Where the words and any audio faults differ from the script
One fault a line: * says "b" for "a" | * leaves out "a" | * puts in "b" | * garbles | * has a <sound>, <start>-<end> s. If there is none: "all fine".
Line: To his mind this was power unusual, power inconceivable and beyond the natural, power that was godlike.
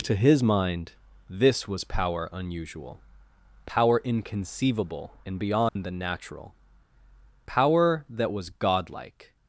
* has a dropout, 5.7-5.8 s